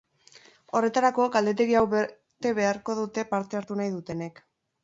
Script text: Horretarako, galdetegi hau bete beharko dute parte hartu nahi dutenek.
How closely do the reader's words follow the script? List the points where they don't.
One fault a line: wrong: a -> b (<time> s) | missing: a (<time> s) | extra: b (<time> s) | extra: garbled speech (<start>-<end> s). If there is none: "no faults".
no faults